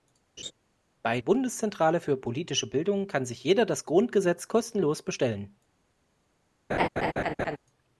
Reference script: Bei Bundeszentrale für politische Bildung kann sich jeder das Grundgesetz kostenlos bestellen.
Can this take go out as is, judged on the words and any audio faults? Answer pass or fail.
fail